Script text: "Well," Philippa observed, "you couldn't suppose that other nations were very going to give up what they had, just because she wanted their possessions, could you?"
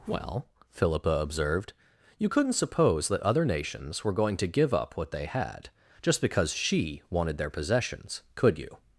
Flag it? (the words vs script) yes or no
yes